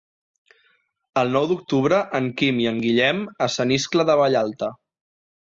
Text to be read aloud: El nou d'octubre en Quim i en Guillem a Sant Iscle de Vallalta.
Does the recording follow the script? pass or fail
pass